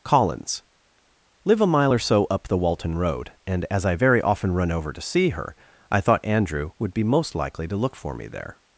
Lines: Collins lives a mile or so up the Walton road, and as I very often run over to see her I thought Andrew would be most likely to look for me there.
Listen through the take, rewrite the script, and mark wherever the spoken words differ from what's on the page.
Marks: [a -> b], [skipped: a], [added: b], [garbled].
Collins [lives -> live] a mile or so up the Walton road, and as I very often run over to see her I thought Andrew would be most likely to look for me there.